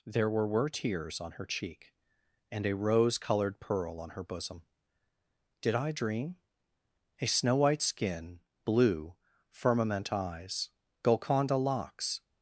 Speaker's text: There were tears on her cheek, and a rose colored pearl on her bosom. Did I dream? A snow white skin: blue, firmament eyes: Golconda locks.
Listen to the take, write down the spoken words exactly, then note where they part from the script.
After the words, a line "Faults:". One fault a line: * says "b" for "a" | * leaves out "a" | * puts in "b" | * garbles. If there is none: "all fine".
There were were tears on her cheek, and a rose colored pearl on her bosom. Did I dream? A snow white skin: blue, firmament eyes: Golconda locks.
Faults:
* puts in "were"